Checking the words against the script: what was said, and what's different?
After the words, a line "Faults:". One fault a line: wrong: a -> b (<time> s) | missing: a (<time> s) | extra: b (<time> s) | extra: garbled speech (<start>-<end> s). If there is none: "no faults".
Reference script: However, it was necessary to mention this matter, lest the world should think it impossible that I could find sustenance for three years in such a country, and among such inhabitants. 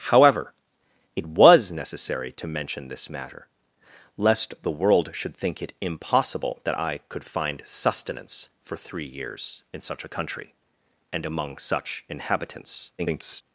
However, it was necessary to mention this matter, lest the world should think it impossible that I could find sustenance for three years in such a country, and among such inhabitants. [garbled]
Faults:
extra: garbled speech (13.0-13.4 s)